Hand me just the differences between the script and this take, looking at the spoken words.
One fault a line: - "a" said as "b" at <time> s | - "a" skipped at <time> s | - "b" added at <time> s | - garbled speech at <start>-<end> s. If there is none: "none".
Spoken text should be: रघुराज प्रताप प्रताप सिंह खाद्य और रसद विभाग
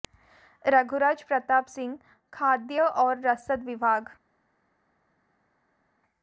- "प्रताप" skipped at 1.7 s